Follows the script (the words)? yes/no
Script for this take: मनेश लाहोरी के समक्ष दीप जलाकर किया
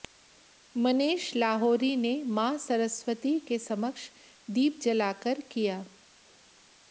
no